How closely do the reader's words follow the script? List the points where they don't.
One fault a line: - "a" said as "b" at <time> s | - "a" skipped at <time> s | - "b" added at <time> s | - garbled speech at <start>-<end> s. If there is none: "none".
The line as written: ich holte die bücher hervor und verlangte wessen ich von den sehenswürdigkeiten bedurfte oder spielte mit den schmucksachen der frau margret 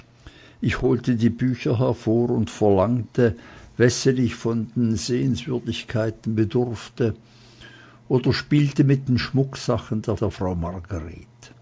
- "der" added at 10.1 s